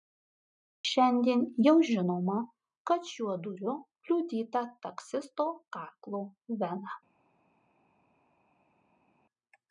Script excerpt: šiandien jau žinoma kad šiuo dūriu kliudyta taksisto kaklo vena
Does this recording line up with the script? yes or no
yes